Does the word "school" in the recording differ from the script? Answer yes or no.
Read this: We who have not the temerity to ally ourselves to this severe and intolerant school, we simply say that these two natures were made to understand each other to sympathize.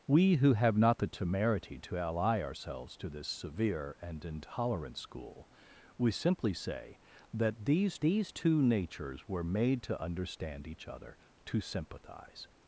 no